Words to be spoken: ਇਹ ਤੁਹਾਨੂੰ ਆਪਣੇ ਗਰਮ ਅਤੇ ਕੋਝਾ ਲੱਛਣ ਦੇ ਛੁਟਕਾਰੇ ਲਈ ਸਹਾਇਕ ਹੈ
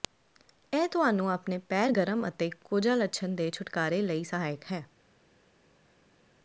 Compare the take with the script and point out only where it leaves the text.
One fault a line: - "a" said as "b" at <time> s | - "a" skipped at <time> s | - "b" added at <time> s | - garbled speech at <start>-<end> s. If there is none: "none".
- "ਪੈਰ" added at 1.7 s